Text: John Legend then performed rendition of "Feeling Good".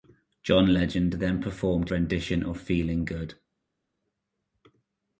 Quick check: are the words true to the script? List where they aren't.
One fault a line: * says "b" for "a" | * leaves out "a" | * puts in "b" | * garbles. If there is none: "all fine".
all fine